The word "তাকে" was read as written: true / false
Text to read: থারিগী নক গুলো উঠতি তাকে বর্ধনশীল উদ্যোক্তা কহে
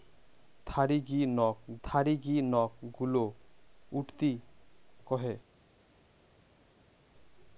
false